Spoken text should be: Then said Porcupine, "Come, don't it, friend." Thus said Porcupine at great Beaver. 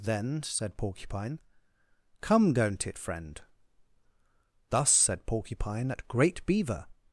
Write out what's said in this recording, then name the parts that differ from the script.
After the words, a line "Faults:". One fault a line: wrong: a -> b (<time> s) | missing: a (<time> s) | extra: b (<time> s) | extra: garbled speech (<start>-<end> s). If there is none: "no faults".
Then said Porcupine, "Come, don't it, friend." Thus said Porcupine at great Beaver.
Faults:
no faults